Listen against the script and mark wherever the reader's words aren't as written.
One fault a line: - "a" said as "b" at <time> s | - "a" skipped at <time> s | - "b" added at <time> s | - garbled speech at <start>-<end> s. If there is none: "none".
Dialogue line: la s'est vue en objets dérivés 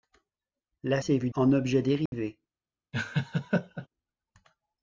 none